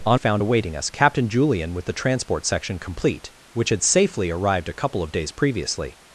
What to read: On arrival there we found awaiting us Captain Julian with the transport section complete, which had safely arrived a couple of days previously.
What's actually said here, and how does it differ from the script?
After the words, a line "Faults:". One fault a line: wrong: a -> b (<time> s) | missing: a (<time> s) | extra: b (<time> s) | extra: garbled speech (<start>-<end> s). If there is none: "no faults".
On found awaiting us Captain Julian with the transport section complete, which had safely arrived a couple of days previously.
Faults:
missing: arrival there we (0.2 s)